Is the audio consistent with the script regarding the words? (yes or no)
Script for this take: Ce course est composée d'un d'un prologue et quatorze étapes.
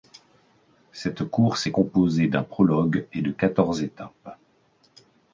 no